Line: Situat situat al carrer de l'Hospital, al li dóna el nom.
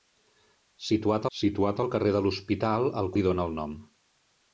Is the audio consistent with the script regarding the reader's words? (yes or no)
yes